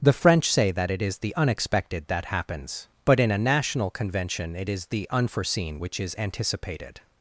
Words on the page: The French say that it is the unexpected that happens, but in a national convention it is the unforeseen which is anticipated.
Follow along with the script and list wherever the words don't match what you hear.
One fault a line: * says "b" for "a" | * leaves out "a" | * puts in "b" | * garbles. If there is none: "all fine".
all fine